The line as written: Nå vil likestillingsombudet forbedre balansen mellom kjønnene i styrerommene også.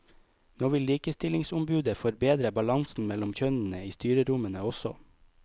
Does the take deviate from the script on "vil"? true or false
false